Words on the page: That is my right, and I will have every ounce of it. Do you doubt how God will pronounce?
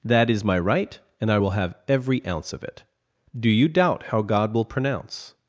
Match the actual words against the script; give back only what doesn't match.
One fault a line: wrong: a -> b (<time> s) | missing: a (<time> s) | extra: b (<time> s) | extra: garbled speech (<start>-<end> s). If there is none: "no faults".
no faults